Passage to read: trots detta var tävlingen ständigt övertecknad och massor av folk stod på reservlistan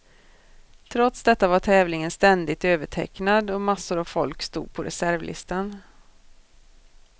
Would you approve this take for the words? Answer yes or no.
yes